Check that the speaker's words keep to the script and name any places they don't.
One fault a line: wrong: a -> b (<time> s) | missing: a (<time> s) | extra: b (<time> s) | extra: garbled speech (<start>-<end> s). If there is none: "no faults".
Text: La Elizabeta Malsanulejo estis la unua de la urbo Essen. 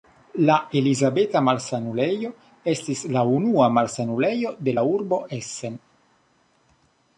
extra: malsanulejo (3.8 s)